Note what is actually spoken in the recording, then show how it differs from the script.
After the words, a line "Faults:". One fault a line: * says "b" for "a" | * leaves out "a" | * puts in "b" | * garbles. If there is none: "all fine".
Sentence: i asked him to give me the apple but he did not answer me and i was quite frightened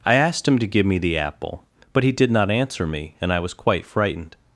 i asked him to give me the apple but he did not answer me and i was quite frightened
Faults:
all fine